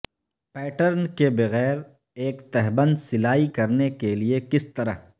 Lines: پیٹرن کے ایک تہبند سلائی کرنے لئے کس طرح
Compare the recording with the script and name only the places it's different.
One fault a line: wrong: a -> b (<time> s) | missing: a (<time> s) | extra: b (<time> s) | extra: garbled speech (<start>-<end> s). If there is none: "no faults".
extra: بغیر (1.3 s)
extra: کے (3.9 s)